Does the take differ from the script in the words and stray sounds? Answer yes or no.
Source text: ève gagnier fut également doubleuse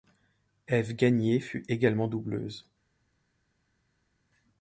no